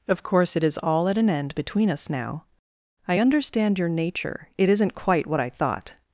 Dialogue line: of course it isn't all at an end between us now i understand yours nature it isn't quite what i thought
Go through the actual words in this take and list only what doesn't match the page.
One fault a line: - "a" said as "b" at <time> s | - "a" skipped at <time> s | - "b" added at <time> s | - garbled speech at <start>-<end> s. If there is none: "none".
- "isn't" said as "is" at 0.6 s
- "yours" said as "your" at 3.8 s